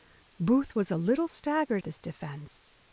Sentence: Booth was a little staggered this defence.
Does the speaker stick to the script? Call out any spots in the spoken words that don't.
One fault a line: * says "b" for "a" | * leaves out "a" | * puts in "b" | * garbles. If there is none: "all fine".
all fine